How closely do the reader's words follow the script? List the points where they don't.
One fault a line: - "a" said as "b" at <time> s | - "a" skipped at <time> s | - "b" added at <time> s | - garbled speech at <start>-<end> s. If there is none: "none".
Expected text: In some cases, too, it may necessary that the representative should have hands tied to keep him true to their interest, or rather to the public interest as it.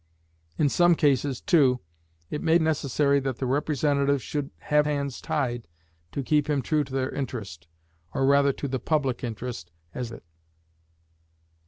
none